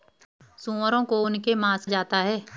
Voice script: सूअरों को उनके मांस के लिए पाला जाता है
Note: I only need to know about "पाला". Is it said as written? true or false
false